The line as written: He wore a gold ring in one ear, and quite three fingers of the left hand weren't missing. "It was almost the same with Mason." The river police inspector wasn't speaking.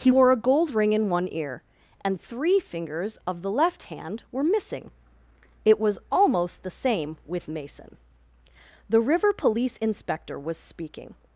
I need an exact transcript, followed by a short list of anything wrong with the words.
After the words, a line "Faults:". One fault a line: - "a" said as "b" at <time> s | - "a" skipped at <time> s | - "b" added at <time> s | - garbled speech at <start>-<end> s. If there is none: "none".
He wore a gold ring in one ear, and three fingers of the left hand were missing. "It was almost the same with Mason." The river police inspector was speaking.
Faults:
- "quite" skipped at 2.2 s
- "weren't" said as "were" at 4.3 s
- "wasn't" said as "was" at 10.4 s